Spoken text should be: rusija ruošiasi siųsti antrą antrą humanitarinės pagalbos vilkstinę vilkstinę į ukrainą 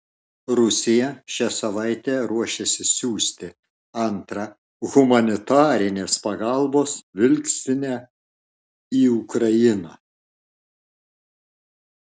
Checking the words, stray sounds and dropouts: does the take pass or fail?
fail